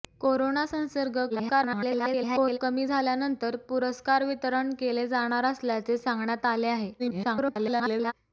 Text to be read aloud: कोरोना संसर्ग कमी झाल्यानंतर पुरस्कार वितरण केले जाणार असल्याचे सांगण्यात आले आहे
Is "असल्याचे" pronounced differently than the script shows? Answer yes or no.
no